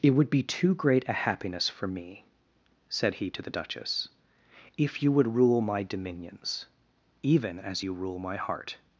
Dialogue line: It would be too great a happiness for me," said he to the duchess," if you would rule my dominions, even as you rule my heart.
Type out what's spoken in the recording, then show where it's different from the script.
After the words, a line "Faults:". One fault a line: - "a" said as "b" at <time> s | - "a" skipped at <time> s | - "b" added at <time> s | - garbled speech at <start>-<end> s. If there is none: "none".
It would be too great a happiness for me," said he to the duchess," if you would rule my dominions, even as you rule my heart.
Faults:
none